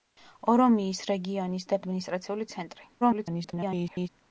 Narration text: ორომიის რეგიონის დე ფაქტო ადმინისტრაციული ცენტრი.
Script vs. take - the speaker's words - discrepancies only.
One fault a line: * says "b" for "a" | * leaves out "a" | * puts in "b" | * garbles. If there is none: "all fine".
* leaves out "ფაქტო"
* garbles